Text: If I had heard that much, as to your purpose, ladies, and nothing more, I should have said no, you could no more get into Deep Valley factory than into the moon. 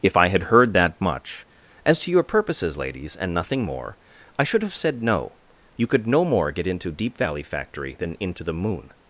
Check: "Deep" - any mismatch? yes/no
no